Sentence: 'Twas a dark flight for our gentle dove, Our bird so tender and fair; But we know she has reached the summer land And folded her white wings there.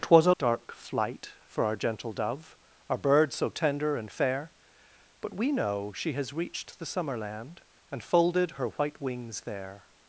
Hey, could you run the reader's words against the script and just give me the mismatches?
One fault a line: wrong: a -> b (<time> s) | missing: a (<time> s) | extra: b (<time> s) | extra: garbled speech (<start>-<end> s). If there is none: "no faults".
no faults